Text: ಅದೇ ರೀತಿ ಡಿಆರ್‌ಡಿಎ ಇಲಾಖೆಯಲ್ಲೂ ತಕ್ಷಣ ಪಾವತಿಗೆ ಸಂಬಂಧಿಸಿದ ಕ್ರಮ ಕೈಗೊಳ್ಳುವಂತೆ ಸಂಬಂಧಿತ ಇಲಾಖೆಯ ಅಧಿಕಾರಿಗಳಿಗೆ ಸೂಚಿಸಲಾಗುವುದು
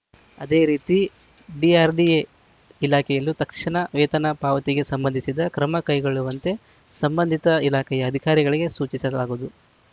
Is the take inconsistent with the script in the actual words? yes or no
yes